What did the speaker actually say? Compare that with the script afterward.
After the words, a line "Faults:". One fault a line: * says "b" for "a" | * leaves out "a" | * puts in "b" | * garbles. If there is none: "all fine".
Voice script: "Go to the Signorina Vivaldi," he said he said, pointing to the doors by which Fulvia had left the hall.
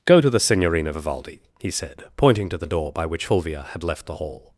"Go to the Signorina Vivaldi," he said, pointing to the door by which Fulvia had left the hall.
Faults:
* leaves out "he said"
* says "door" for "doors"